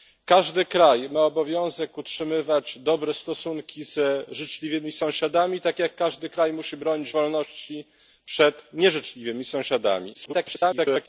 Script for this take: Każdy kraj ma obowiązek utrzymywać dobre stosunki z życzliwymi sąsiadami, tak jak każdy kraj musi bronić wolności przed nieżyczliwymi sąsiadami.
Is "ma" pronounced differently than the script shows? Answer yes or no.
no